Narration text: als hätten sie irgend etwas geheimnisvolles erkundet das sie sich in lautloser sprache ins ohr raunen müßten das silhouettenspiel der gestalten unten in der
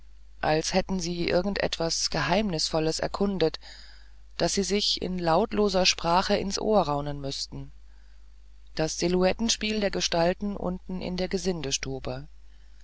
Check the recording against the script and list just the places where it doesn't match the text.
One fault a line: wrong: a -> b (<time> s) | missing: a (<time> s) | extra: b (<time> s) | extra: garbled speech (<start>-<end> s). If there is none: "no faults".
no faults